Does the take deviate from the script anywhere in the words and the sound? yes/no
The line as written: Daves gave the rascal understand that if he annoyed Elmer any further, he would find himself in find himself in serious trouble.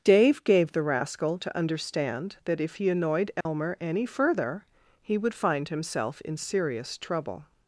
yes